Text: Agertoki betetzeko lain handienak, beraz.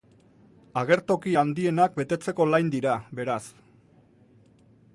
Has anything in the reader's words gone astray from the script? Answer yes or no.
yes